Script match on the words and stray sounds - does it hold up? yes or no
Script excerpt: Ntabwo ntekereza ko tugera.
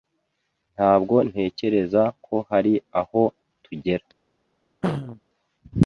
no